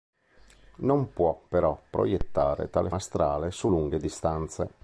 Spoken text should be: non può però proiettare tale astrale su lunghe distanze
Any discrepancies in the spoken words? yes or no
no